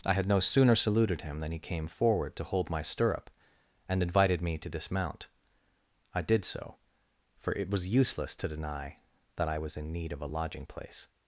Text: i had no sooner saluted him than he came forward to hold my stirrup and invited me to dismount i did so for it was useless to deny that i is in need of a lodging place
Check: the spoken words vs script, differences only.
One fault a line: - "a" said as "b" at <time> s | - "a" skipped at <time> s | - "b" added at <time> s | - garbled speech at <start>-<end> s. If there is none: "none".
- "is" said as "was" at 9.6 s